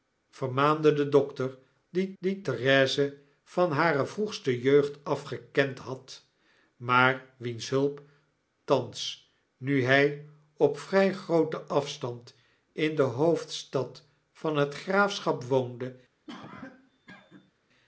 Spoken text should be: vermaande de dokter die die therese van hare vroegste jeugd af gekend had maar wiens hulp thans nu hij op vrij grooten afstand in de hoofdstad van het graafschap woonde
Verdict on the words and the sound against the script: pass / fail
fail